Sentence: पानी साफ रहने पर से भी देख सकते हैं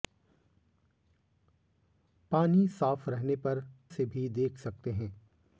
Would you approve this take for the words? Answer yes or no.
yes